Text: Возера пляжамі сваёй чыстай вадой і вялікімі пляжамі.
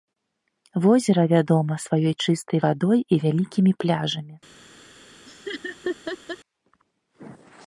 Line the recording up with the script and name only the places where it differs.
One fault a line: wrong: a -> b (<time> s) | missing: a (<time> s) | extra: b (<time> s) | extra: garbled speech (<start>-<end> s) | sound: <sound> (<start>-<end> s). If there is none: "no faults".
wrong: пляжамі -> вядома (1.3 s)
sound: laugh (5.3-6.4 s)